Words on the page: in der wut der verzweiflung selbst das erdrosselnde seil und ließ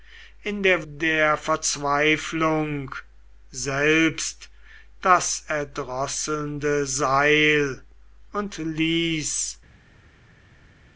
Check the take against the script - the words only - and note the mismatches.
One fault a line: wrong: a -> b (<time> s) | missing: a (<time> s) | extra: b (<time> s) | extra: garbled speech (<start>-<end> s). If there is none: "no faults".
missing: wut (0.9 s)